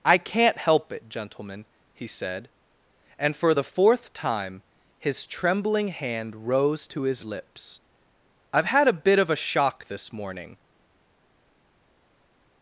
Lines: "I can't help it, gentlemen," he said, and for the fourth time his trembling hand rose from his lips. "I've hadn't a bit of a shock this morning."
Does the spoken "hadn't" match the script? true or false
false